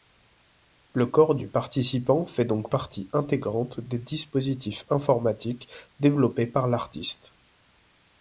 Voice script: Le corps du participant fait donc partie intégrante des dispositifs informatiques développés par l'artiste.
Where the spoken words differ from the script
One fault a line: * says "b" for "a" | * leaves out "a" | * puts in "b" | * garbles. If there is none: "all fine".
all fine